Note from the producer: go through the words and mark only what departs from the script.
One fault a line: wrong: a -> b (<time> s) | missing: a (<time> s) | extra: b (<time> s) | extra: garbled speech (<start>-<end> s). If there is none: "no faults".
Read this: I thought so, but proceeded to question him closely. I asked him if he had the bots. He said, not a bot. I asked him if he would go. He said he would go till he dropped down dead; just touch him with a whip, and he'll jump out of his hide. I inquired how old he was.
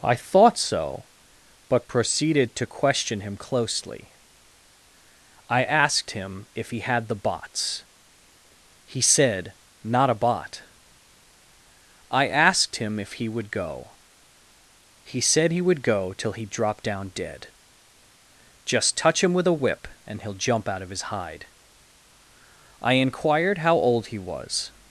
no faults